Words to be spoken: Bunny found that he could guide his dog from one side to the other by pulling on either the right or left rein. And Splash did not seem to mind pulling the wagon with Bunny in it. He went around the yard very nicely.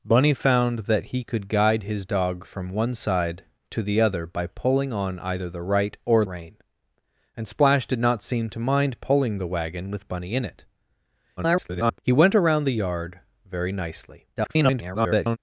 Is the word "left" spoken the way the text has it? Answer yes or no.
no